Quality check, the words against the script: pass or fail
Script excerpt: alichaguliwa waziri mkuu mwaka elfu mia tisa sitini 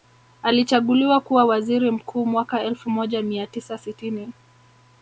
fail